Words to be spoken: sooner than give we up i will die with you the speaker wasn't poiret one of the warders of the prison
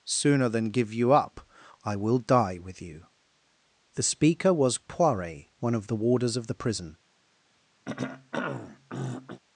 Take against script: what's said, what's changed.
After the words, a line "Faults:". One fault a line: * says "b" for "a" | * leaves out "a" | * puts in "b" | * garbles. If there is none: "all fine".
sooner than give you up i will die with you the speaker was poiret one of the warders of the prison
Faults:
* says "you" for "we"
* says "was" for "wasn't"